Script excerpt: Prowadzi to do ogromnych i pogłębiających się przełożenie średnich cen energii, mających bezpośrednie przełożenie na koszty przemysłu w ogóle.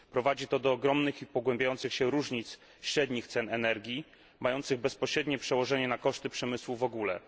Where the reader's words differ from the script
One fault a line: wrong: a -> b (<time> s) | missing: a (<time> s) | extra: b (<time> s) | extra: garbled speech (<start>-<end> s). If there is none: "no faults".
wrong: przełożenie -> różnic (2.1 s)